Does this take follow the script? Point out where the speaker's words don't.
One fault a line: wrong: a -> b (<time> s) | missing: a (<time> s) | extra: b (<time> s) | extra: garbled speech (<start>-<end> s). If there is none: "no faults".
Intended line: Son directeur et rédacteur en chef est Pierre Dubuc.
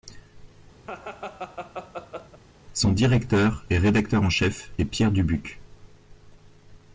no faults